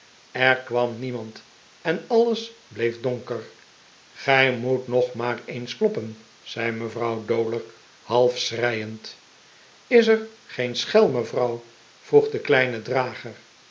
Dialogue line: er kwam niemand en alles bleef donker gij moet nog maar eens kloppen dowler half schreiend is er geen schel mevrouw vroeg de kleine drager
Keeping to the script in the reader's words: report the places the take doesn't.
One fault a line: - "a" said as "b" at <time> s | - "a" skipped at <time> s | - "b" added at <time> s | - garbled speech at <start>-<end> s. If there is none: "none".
- "zei mevrouw" added at 6.4 s